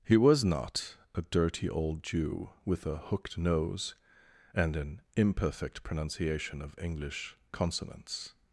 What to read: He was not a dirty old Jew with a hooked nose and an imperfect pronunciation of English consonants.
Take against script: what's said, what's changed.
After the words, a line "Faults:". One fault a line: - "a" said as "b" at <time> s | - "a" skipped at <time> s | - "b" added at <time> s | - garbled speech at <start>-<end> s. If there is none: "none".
He was not a dirty old Jew with a hooked nose and an imperfect pronunciation of English consonants.
Faults:
none